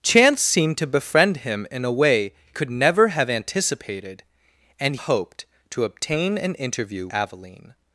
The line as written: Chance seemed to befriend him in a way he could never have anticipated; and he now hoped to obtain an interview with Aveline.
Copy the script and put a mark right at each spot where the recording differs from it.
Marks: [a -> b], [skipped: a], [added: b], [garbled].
Chance seemed to befriend him in a way [skipped: he] could never have anticipated; and [skipped: he now] hoped to obtain an interview [skipped: with] Aveline.